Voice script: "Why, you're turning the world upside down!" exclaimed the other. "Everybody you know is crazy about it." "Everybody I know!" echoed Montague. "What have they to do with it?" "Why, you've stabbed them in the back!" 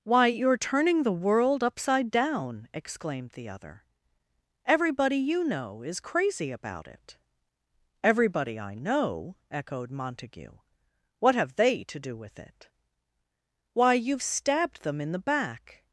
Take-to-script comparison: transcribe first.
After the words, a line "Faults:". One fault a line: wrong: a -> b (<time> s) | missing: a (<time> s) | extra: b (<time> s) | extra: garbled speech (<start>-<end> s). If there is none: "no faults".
"Why, you're turning the world upside down!" exclaimed the other. "Everybody you know is crazy about it." "Everybody I know!" echoed Montague. "What have they to do with it?" "Why, you've stabbed them in the back!"
Faults:
no faults